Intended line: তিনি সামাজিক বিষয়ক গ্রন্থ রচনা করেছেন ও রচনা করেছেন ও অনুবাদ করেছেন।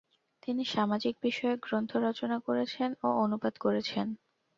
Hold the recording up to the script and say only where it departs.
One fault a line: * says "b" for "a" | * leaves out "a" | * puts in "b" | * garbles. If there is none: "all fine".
* leaves out "রচনা করেছেন ও"